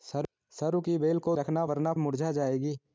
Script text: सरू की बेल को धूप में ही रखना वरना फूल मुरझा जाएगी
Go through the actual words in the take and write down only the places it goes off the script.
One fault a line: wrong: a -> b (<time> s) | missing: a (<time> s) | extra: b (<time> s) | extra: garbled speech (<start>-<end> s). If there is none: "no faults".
missing: धूप में ही (1.4 s)
missing: फूल (1.9 s)